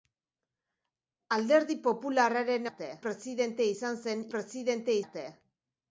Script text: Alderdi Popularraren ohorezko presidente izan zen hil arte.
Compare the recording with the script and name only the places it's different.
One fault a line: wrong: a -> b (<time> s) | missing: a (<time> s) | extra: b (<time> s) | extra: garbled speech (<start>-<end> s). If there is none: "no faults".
wrong: ohorezko -> arte (2.7 s)
wrong: hil -> presidente (4.4 s)